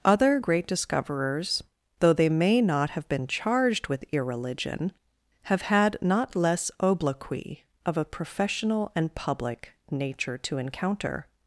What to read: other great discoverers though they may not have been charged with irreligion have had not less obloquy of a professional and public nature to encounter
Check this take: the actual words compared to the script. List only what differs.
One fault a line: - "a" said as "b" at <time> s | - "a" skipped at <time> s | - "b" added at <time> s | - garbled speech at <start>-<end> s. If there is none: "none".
none